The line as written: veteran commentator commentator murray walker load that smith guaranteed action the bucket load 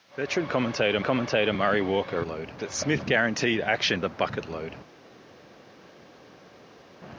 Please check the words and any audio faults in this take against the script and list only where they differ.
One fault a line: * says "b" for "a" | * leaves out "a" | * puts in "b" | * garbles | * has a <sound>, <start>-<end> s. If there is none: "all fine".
all fine